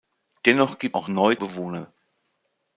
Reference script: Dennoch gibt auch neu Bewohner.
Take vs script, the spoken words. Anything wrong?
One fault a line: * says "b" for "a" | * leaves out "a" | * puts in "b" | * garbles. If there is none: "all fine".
all fine